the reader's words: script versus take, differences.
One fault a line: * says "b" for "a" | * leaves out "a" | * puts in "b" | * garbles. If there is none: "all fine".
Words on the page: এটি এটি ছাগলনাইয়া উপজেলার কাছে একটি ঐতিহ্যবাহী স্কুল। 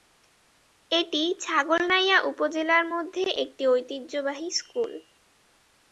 * leaves out "এটি"
* says "মধ্যে" for "কাছে"